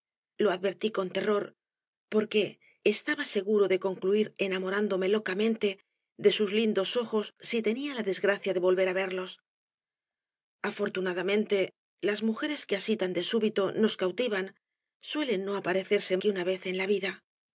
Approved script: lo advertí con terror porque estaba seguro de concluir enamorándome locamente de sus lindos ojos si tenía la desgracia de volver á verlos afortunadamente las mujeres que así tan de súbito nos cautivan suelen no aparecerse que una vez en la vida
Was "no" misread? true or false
false